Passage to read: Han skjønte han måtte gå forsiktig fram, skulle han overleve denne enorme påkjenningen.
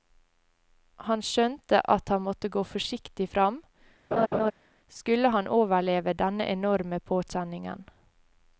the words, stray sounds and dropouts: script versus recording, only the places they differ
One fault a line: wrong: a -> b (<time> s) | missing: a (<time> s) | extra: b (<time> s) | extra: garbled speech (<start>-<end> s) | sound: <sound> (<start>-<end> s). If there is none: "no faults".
extra: at (1.9 s)
sound: laugh (4.1-4.5 s)